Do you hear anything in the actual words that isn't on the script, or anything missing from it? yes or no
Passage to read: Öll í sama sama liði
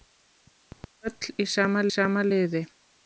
no